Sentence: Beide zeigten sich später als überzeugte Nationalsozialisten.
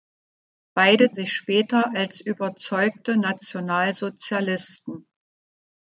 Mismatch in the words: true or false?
true